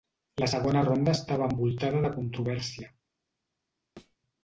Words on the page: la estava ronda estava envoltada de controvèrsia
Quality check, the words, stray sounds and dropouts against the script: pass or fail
fail